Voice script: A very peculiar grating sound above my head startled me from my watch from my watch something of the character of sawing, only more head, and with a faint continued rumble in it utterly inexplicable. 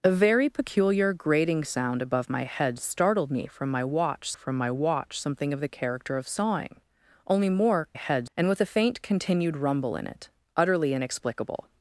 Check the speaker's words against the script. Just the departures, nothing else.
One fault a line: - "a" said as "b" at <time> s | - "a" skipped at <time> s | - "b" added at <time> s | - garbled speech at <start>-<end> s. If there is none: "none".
none